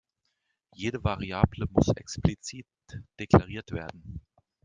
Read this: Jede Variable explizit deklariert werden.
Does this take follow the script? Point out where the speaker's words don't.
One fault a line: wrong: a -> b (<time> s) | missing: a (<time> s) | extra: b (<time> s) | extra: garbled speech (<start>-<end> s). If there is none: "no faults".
extra: muss (1.7 s)